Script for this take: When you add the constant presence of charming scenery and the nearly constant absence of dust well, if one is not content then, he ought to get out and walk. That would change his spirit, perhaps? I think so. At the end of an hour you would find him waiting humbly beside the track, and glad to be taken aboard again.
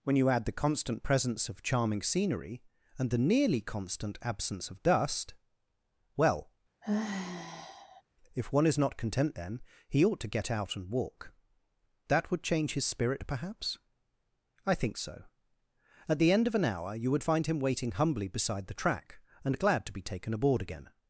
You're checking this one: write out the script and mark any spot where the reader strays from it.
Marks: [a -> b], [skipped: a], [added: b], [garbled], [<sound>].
When you add the constant presence of charming scenery and the nearly constant absence of dust well, [sigh] if one is not content then, he ought to get out and walk. That would change his spirit, perhaps? I think so. At the end of an hour you would find him waiting humbly beside the track, and glad to be taken aboard again.